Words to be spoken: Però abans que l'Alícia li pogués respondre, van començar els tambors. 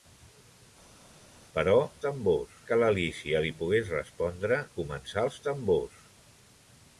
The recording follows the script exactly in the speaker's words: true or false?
false